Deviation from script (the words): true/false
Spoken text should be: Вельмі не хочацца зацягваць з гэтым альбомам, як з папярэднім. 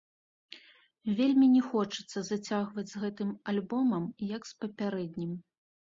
false